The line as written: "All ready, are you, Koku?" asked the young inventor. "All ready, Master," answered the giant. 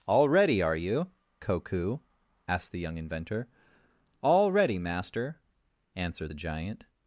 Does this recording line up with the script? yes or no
yes